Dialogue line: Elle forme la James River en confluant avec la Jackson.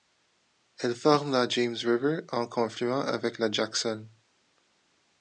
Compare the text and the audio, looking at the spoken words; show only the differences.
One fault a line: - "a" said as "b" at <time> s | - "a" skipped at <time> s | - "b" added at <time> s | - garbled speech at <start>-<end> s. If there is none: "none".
none